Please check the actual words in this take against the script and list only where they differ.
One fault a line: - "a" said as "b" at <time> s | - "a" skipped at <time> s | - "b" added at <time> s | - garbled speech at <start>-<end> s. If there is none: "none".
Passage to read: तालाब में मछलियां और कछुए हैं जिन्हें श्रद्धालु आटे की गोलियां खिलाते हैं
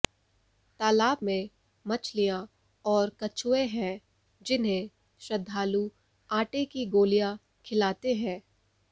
none